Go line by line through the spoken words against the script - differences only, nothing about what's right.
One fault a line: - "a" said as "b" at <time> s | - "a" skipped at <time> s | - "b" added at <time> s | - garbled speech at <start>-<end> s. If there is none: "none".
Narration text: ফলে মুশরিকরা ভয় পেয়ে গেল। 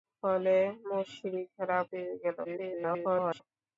- "ভয়" skipped at 1.8 s
- garbled speech at 2.4-3.4 s